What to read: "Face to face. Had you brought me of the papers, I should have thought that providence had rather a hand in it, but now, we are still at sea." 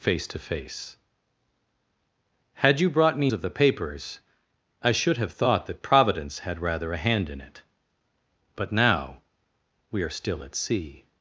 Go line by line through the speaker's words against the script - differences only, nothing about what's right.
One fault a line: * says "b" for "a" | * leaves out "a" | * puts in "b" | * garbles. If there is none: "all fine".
all fine